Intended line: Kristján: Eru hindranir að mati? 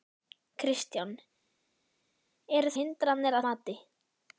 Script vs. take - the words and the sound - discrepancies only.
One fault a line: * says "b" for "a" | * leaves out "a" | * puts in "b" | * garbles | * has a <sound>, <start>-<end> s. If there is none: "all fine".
all fine